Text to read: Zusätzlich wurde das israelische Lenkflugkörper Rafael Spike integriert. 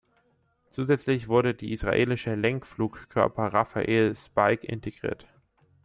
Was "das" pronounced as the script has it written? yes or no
no